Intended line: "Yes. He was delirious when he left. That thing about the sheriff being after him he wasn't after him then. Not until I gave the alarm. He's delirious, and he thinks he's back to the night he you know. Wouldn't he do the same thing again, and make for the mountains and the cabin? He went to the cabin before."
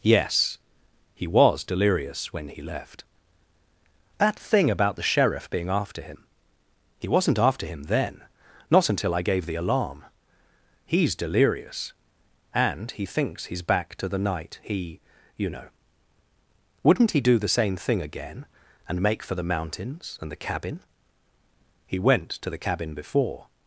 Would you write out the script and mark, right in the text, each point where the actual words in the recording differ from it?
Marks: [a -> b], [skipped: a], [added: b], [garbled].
"Yes. He was delirious when he left. That thing about the sheriff being after him he wasn't after him then. Not until I gave the alarm. He's delirious, and he thinks he's back to the night he you know. Wouldn't he do the same thing again, and make for the mountains and the cabin? He went to the cabin before."